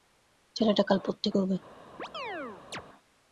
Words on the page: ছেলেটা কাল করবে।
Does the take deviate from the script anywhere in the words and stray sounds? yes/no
yes